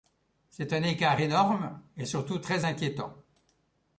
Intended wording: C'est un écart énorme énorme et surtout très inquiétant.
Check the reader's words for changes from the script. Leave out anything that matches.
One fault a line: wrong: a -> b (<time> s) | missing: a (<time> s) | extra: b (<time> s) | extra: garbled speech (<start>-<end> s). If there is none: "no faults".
missing: énorme (1.8 s)